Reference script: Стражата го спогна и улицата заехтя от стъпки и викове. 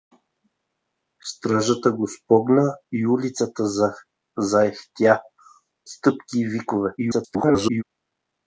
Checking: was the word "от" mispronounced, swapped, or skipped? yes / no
yes